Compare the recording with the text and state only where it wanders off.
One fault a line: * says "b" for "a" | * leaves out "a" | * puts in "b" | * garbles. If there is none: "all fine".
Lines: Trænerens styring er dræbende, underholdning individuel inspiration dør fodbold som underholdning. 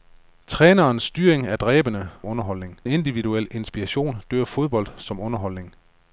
all fine